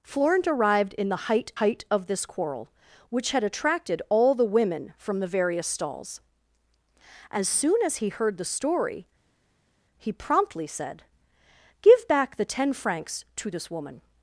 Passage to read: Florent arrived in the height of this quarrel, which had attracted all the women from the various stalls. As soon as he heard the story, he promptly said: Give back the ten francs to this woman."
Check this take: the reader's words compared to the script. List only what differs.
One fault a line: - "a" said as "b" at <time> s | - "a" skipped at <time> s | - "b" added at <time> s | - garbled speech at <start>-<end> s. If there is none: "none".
- "height" added at 1.6 s